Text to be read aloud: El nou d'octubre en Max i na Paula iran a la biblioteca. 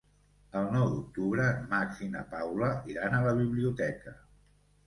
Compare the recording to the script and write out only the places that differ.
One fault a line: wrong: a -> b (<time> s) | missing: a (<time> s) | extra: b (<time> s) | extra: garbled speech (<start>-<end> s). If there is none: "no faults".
no faults